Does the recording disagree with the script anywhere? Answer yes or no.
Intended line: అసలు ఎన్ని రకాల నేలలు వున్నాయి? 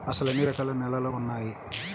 no